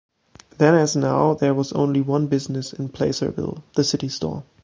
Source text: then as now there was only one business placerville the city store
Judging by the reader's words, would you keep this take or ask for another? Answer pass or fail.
fail